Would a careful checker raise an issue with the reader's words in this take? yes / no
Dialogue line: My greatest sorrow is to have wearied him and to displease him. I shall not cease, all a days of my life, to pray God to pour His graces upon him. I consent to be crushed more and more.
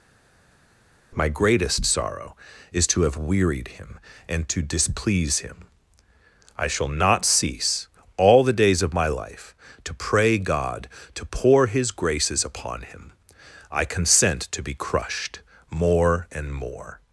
yes